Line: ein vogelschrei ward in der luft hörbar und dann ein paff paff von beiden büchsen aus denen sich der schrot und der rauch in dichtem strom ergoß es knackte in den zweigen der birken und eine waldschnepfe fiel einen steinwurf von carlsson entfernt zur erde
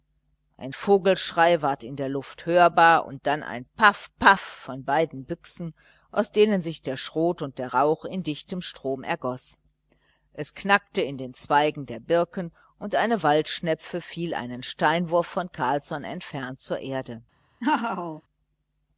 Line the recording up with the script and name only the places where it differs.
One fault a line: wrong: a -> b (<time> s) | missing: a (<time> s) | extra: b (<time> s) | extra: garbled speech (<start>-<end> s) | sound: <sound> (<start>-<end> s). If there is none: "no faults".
sound: laugh (17.6-18.2 s)